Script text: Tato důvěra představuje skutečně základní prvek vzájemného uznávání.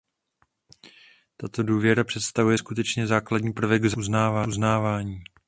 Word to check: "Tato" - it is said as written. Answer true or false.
true